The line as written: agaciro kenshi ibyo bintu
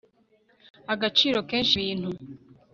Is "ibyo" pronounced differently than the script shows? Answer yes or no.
yes